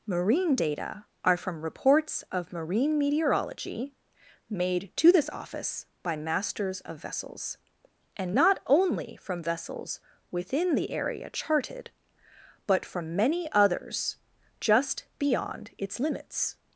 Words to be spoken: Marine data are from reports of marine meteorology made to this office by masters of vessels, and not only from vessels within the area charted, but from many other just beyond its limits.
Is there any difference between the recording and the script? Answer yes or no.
yes